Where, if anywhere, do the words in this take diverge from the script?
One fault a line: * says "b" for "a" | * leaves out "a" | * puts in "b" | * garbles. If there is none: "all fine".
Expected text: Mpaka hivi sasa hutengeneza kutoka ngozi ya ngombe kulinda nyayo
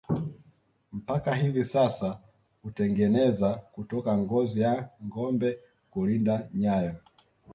all fine